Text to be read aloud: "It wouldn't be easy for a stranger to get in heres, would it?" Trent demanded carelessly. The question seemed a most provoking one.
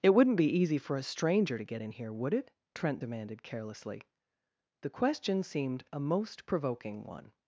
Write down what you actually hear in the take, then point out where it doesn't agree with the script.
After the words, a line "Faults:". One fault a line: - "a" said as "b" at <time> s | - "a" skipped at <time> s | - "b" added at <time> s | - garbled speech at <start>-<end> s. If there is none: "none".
"It wouldn't be easy for a stranger to get in here, would it?" Trent demanded carelessly. The question seemed a most provoking one.
Faults:
- "heres" said as "here" at 1.9 s